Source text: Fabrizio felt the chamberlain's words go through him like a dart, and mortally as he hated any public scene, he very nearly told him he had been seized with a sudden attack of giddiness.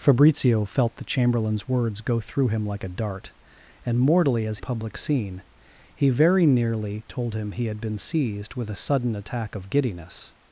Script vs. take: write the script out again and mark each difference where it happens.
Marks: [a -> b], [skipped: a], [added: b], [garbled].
Fabrizio felt the chamberlain's words go through him like a dart, and mortally as [skipped: he hated any] public scene, he very nearly told him he had been seized with a sudden attack of giddiness.